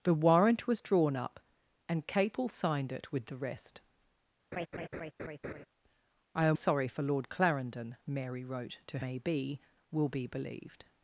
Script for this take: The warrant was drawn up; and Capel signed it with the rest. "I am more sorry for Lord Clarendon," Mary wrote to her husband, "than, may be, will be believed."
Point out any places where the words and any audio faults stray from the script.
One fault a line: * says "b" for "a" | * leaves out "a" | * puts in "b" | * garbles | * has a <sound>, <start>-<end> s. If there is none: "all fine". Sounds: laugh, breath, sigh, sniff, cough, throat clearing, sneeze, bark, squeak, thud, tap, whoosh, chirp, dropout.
* has a laugh, 4.5-5.7 s
* leaves out "more"
* leaves out "her husband than"